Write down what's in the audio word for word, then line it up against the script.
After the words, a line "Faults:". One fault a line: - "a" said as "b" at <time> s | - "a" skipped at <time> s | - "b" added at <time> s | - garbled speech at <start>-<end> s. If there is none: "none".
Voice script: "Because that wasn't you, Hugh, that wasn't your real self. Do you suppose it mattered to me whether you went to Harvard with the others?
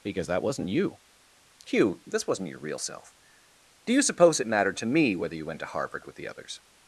"Because that wasn't you, Hugh, this wasn't your real self. Do you suppose it mattered to me whether you went to Harvard with the others?
Faults:
- "that" said as "this" at 2.0 s